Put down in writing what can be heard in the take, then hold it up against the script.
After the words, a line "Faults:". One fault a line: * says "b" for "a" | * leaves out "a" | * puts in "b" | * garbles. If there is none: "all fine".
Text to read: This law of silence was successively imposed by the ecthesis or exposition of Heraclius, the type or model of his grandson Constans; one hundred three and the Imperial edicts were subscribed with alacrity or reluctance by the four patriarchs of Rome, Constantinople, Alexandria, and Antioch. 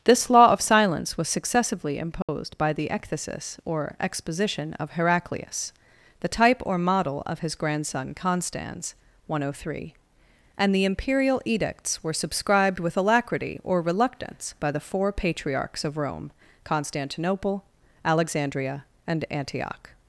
This law of silence was successively imposed by the ecthesis or exposition of Heraclius, the type or model of his grandson Constans; one hundred three and the Imperial edicts were subscribed with alacrity or reluctance by the four patriarchs of Rome, Constantinople, Alexandria, and Antioch.
Faults:
all fine